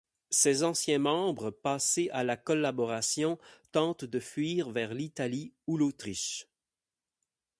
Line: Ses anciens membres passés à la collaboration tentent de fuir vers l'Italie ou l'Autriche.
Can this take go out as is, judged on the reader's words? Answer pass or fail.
pass